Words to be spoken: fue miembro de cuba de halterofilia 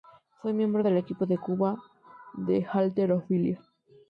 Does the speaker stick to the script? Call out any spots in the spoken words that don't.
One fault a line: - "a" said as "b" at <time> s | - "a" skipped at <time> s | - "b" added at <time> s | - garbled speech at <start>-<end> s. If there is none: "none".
- "del equipo" added at 0.8 s